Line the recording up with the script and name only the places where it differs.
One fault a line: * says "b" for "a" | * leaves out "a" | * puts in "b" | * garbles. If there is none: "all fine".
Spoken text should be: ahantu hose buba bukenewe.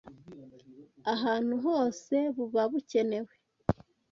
all fine